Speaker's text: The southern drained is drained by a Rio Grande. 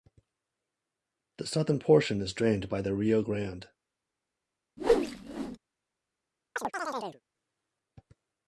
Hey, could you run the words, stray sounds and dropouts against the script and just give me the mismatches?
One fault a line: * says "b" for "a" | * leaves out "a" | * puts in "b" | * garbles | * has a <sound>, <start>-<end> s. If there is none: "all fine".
* says "portion" for "drained"
* says "the" for "a"
* has a whoosh, 4.8-5.6 s
* has a chirp, 6.6-7.2 s